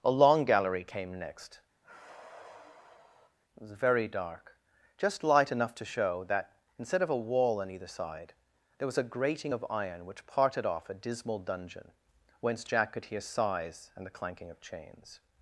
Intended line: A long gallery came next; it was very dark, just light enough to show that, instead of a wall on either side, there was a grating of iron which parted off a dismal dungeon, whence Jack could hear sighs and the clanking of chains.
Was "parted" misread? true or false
false